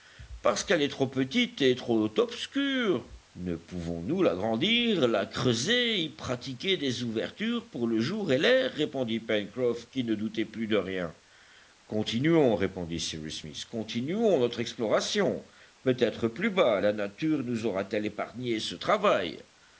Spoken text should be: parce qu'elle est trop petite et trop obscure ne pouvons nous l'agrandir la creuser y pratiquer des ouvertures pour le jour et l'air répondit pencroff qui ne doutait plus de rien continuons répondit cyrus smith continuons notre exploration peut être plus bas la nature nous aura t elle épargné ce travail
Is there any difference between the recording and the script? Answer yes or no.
no